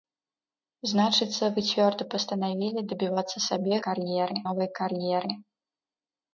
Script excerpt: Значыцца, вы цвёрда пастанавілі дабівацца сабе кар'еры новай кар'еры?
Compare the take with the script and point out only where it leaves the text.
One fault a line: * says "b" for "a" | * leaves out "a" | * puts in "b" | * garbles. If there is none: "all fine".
all fine